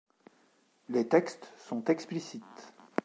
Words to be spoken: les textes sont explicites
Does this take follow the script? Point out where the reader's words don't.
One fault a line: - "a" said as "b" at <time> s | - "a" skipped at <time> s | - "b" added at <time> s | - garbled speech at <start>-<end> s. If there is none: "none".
none